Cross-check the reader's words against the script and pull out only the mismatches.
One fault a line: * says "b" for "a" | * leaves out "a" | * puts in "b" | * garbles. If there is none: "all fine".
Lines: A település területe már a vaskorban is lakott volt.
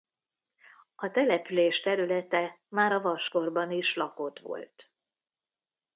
all fine